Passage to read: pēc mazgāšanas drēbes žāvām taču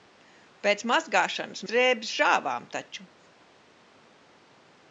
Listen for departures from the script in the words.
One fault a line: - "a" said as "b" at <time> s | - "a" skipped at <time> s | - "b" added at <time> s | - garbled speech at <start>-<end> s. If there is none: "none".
none